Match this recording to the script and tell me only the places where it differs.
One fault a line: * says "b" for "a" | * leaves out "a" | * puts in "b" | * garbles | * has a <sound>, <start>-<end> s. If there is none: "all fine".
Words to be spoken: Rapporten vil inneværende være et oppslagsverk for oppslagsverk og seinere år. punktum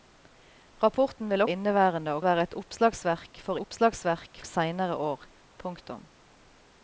all fine